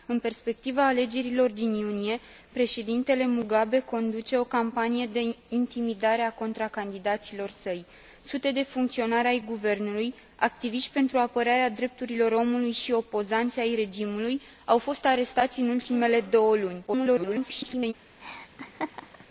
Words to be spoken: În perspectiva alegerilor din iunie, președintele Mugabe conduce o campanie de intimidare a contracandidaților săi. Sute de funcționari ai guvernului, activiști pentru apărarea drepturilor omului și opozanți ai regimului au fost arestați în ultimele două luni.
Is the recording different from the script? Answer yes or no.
yes